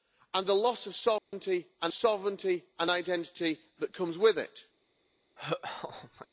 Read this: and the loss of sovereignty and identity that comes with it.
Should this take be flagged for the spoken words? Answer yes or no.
yes